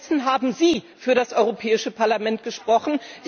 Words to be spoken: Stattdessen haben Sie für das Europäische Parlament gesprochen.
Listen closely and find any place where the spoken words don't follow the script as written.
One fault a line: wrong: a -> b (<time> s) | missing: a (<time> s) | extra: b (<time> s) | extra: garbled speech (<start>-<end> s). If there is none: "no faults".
no faults